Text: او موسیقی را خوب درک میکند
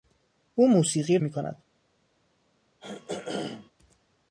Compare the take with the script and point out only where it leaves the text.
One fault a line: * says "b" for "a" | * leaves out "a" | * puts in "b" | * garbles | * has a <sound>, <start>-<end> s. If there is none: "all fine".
* leaves out "را خوب درک"
* has a throat clearing, 2.8-3.7 s